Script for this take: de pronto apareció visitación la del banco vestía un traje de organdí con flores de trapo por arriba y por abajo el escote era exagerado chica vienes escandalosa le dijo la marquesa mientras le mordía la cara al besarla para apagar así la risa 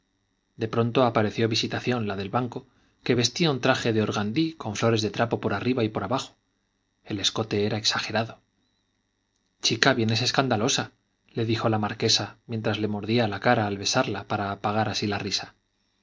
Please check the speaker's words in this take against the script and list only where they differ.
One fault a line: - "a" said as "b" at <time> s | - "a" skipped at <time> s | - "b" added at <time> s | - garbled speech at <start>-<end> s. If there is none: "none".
- "que" added at 3.0 s